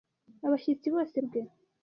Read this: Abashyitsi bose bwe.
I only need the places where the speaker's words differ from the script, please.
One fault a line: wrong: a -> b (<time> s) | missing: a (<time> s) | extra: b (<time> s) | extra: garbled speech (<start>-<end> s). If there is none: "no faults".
no faults